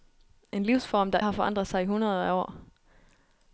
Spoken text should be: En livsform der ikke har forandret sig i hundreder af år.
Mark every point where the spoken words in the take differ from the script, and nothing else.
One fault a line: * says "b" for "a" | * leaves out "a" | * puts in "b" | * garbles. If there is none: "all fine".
* leaves out "ikke"